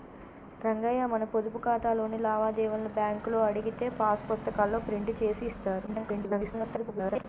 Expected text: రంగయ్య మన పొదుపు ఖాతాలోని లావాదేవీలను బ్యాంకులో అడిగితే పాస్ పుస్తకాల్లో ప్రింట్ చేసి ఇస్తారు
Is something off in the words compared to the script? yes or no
yes